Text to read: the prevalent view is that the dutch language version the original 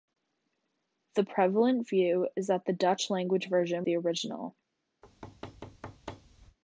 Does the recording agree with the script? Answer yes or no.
yes